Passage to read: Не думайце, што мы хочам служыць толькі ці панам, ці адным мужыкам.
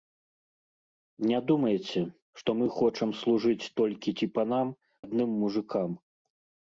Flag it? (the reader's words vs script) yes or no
yes